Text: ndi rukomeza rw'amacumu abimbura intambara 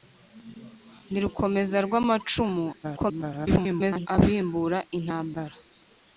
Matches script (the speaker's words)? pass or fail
fail